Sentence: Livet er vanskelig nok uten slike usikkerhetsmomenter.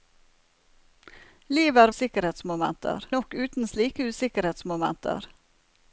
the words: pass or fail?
fail